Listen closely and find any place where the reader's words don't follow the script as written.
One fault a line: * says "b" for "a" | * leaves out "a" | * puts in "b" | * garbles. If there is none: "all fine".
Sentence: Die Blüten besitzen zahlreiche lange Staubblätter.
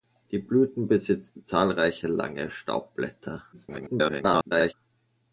* garbles